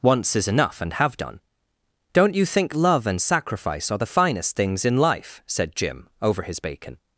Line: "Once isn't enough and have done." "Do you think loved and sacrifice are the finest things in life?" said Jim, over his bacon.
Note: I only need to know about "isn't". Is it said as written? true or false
false